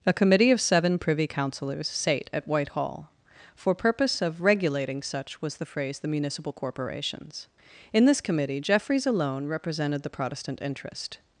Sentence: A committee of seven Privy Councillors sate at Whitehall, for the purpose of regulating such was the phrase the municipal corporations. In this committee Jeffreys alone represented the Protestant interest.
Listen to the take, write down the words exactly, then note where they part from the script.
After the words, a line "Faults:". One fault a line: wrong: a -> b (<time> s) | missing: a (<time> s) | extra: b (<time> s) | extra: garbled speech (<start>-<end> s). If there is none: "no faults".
A committee of seven Privy Councillors sate at Whitehall, for purpose of regulating such was the phrase the municipal corporations. In this committee Jeffreys alone represented the Protestant interest.
Faults:
missing: the (3.8 s)